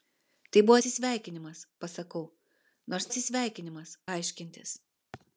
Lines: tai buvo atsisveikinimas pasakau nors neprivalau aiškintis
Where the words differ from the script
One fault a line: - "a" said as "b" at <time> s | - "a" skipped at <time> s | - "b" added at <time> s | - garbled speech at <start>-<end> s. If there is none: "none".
- "neprivalau" said as "atsisveikinimas" at 3.1 s